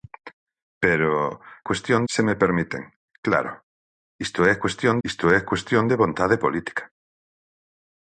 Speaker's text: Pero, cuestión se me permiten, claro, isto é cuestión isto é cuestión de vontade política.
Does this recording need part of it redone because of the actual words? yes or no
no